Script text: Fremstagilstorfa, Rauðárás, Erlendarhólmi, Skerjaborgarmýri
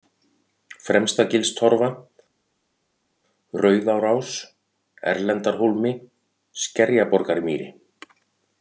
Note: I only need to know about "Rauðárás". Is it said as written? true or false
true